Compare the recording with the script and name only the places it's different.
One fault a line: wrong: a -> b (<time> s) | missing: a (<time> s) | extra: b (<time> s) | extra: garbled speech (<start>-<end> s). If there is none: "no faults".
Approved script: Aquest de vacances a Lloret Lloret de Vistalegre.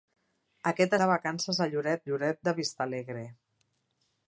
no faults